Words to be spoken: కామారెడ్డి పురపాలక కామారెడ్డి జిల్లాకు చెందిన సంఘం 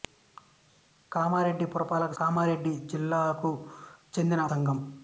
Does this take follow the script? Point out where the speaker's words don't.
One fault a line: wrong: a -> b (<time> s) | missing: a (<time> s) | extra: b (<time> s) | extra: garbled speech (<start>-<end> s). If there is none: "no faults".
no faults